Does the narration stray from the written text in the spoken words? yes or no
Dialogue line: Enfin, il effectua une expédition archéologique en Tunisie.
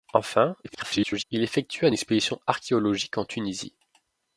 yes